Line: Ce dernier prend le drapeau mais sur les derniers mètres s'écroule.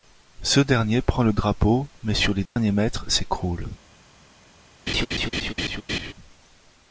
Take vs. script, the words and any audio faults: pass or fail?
fail